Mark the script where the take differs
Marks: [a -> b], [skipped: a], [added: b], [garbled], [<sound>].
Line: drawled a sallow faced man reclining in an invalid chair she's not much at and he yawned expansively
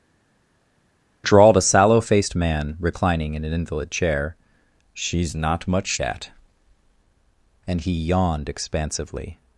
drawled a sallow faced man reclining in an invalid chair she's not much at and he yawned expansively